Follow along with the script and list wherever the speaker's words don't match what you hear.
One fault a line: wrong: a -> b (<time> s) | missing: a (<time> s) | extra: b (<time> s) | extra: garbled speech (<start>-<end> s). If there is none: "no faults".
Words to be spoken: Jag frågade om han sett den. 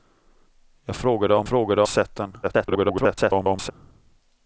wrong: han -> frågade (1.4 s)
extra: garbled speech (2.4-3.7 s)